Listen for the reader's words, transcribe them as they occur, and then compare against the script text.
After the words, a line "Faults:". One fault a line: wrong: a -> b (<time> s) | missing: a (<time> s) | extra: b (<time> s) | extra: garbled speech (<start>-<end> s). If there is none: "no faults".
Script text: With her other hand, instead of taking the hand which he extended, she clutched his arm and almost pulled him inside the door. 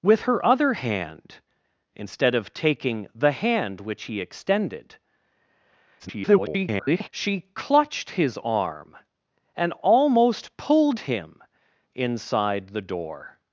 With her other hand, instead of taking the hand which he extended, [garbled] she clutched his arm and almost pulled him inside the door.
Faults:
extra: garbled speech (6.0-7.1 s)